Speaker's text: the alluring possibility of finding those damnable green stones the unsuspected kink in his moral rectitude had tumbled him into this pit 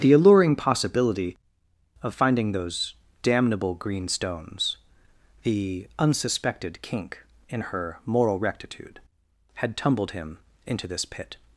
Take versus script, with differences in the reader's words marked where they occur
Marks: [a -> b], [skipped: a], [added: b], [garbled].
the alluring possibility of finding those damnable green stones the unsuspected kink in [his -> her] moral rectitude had tumbled him into this pit